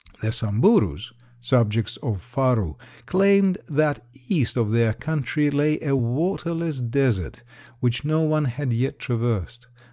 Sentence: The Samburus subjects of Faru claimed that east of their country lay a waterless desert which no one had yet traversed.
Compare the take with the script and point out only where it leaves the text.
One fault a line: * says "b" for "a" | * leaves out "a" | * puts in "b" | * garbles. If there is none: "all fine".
all fine